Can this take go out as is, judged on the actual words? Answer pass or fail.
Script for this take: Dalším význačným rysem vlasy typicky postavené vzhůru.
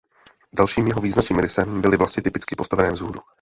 fail